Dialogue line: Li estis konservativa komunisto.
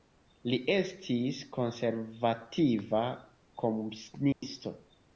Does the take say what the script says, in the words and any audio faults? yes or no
no